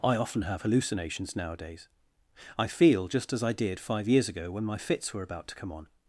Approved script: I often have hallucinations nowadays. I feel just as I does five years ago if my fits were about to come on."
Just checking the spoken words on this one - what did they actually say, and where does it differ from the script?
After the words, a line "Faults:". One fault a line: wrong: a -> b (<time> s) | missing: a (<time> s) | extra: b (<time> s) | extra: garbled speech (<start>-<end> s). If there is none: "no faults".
I often have hallucinations nowadays. I feel just as I did five years ago when my fits were about to come on."
Faults:
wrong: does -> did (3.5 s)
wrong: if -> when (4.5 s)